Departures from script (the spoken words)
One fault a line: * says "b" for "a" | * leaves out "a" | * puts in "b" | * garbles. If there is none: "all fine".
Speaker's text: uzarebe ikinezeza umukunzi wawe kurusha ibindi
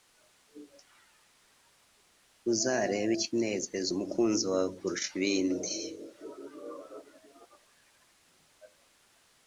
all fine